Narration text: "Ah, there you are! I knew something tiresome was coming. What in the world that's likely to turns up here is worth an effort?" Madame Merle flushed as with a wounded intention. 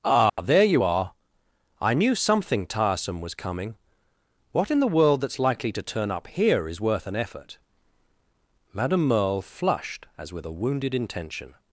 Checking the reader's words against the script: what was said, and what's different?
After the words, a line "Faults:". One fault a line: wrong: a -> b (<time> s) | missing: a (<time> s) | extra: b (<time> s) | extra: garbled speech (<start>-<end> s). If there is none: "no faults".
"Ah, there you are! I knew something tiresome was coming. What in the world that's likely to turn up here is worth an effort?" Madame Merle flushed as with a wounded intention.
Faults:
wrong: turns -> turn (5.8 s)